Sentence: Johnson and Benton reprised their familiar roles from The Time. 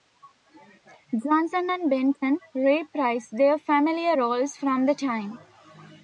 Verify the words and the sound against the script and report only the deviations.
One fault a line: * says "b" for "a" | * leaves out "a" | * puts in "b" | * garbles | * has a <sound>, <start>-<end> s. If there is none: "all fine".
all fine